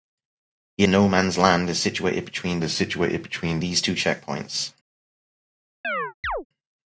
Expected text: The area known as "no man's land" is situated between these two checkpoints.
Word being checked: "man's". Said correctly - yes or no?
no